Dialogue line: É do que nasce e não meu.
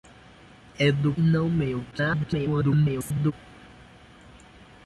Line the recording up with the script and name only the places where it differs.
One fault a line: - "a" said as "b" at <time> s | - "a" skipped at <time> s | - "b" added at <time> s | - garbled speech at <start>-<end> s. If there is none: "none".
- "que nasce" skipped at 1.1 s
- garbled speech at 1.9-3.3 s